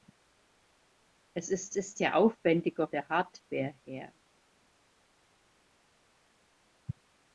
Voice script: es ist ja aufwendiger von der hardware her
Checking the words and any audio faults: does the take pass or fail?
fail